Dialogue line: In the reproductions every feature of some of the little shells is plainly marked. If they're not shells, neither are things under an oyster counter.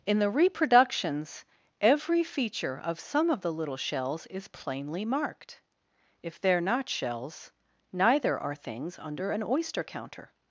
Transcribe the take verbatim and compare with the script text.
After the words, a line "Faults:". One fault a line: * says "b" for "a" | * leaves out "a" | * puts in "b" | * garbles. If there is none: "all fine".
In the reproductions every feature of some of the little shells is plainly marked. If they're not shells, neither are things under an oyster counter.
Faults:
all fine